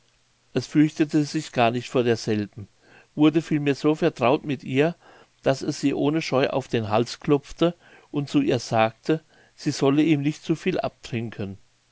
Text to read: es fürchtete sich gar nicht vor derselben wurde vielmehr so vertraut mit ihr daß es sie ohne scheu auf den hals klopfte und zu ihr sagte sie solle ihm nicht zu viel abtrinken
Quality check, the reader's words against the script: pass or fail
pass